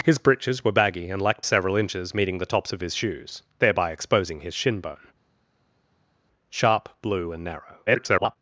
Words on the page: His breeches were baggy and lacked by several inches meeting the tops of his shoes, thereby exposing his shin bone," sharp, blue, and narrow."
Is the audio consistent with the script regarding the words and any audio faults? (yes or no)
no